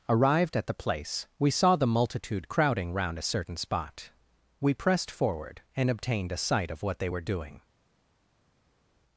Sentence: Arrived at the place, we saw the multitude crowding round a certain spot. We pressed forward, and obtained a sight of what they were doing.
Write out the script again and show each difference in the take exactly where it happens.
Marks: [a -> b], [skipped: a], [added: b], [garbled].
Arrived at the place, we saw the multitude crowding round a certain spot. We pressed forward, and obtained a sight of what they were doing.